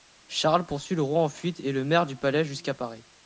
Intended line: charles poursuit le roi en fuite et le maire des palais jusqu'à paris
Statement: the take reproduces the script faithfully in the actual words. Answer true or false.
false